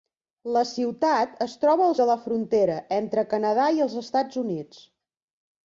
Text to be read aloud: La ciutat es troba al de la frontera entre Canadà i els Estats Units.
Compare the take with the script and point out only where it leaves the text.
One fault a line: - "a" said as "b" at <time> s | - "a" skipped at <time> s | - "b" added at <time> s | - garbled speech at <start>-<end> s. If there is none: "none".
none